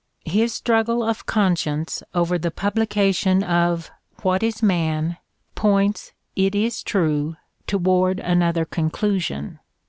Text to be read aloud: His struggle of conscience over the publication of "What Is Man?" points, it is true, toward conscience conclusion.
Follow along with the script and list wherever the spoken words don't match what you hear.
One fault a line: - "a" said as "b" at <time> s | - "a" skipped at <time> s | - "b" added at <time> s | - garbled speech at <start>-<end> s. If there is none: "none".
- "conscience" said as "another" at 8.2 s